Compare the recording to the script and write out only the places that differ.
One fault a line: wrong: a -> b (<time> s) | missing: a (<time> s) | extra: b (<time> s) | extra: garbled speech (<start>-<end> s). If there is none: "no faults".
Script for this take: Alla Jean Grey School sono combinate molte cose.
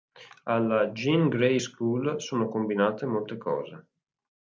no faults